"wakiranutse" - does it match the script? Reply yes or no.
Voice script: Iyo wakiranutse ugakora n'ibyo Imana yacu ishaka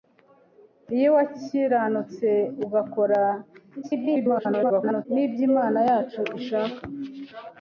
yes